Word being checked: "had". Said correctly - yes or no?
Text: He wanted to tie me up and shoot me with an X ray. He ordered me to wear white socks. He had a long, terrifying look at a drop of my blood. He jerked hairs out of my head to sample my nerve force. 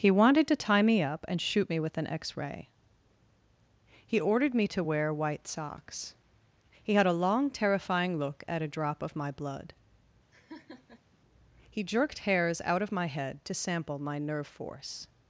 yes